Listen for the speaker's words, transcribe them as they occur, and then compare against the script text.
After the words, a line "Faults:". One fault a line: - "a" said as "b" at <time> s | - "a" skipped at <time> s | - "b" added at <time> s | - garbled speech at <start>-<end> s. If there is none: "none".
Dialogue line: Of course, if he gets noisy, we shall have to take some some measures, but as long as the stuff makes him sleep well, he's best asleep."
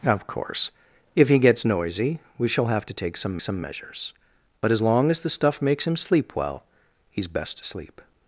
Of course, if he gets noisy, we shall have to take some some measures, but as long as the stuff makes him sleep well, he's best asleep."
Faults:
none